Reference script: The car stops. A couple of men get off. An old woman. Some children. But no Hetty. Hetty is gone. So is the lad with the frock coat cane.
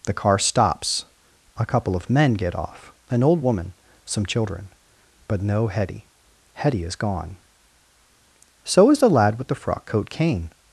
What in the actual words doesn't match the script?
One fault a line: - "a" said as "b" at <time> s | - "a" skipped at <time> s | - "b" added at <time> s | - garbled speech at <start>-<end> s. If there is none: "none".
none